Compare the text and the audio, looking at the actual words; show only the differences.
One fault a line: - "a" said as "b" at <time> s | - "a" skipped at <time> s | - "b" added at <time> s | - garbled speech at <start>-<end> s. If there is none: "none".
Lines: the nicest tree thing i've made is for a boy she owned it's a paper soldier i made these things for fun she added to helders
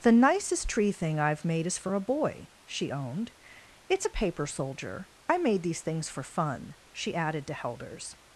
none